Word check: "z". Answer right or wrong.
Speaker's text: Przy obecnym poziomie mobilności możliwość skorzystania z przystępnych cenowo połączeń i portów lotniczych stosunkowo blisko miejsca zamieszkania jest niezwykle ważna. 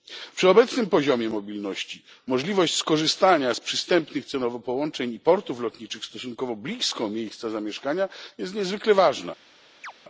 right